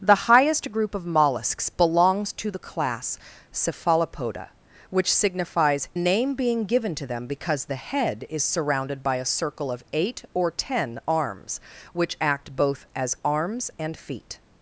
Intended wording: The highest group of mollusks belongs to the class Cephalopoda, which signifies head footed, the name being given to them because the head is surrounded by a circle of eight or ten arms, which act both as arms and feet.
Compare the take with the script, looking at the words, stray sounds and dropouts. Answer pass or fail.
fail